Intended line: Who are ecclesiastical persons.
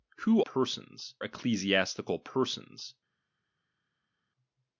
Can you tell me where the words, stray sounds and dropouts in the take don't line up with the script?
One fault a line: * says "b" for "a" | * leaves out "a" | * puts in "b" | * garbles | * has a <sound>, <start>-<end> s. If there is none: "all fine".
* says "persons" for "are"